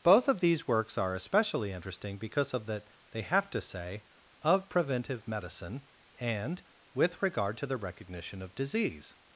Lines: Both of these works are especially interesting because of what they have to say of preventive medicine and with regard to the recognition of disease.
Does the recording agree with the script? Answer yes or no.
no